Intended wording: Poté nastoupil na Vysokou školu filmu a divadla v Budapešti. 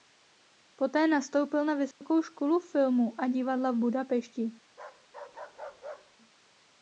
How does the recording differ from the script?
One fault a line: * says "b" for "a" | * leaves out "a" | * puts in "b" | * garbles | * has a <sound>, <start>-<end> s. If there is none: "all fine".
* has a dropout, 1.9-2.0 s
* has a bark, 4.7-6.2 s